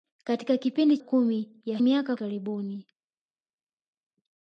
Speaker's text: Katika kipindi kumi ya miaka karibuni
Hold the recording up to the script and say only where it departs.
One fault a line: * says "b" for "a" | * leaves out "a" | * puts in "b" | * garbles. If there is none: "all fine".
all fine